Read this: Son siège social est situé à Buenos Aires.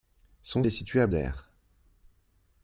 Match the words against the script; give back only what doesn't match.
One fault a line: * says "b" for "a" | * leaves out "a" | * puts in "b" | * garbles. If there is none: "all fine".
* leaves out "siège social"
* leaves out "Buenos"